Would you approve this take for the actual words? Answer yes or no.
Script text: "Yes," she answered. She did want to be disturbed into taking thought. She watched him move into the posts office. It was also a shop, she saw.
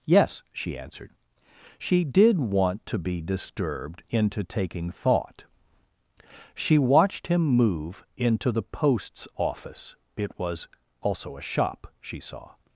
yes